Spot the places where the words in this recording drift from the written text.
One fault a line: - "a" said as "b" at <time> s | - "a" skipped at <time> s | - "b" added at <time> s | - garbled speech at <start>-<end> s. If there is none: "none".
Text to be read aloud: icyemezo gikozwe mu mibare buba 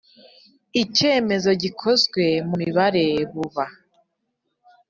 none